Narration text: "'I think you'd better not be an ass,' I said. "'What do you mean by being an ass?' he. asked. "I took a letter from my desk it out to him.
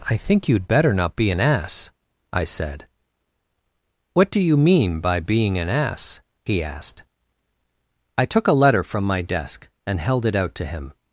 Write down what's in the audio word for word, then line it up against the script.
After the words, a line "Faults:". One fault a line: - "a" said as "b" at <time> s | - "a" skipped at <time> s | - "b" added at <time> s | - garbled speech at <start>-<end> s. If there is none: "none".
"'I think you'd better not be an ass,' I said. "'What do you mean by being an ass?' he. asked. "I took a letter from my desk and held it out to him.
Faults:
- "and held" added at 9.8 s